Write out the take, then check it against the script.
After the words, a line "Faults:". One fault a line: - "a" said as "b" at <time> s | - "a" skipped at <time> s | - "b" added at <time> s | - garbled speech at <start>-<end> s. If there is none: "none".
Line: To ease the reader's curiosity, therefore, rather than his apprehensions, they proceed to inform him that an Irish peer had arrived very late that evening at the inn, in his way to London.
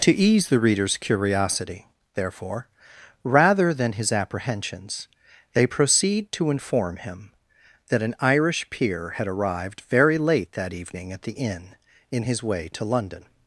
To ease the reader's curiosity, therefore, rather than his apprehensions, they proceed to inform him that an Irish peer had arrived very late that evening at the inn, in his way to London.
Faults:
none